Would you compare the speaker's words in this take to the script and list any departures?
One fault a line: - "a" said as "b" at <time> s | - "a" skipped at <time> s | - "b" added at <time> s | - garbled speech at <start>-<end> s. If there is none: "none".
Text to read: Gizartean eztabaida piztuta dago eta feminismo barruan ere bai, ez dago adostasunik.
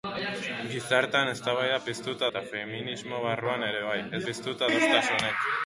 - "dago" skipped at 2.3 s
- "dago" said as "piztuta" at 4.3 s